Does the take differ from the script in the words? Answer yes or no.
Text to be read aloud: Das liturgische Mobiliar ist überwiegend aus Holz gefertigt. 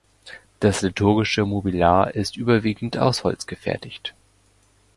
no